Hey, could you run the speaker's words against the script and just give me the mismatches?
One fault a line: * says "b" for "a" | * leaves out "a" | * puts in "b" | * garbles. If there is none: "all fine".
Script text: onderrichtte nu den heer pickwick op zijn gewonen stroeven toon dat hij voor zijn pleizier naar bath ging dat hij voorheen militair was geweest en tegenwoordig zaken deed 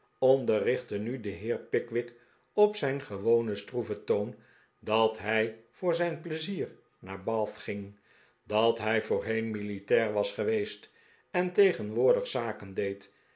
all fine